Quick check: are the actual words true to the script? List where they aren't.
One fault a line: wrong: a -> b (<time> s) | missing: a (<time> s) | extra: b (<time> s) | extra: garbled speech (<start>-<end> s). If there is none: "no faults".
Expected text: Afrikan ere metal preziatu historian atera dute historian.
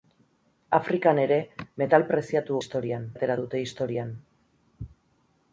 no faults